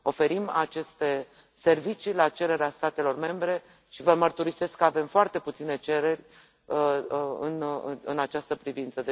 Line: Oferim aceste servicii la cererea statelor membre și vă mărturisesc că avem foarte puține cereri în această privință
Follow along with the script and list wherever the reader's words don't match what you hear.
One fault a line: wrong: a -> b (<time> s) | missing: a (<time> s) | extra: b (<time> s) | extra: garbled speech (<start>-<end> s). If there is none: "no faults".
no faults